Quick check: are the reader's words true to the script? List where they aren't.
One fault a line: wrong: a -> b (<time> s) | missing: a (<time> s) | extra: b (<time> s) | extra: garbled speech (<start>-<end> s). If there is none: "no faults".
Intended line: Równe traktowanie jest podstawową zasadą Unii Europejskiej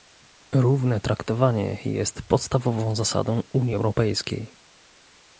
no faults